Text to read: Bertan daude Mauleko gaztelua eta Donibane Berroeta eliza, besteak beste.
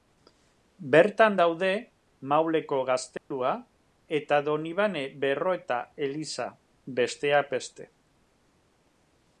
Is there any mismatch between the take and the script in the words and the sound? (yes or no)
yes